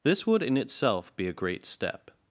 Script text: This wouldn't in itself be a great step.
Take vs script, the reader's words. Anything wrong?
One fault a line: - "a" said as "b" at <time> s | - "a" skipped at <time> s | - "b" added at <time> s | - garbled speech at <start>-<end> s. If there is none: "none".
- "wouldn't" said as "would" at 0.2 s